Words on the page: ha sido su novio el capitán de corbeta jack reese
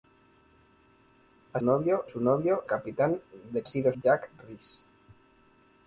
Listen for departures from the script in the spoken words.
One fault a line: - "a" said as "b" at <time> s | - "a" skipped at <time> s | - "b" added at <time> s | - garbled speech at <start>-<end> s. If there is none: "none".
- "sido" said as "novio" at 1.6 s
- "el" skipped at 2.6 s
- "corbeta" said as "sido" at 3.7 s